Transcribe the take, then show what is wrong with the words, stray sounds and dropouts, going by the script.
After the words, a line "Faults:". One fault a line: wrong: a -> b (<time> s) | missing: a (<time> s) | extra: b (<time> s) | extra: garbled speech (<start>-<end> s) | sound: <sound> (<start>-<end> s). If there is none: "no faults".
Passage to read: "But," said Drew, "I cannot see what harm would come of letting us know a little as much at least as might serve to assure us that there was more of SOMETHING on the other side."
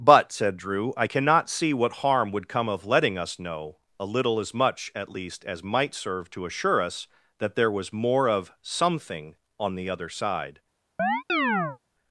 "But," said Drew, "I cannot see what harm would come of letting us know a little as much at least as might serve to assure us that there was more of SOMETHING on the other side."
Faults:
sound: chirp (11.0-11.8 s)